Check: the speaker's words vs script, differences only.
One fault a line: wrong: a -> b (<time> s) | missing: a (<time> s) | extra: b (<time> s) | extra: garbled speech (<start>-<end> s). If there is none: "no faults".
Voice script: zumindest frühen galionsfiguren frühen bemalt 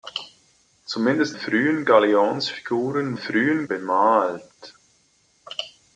no faults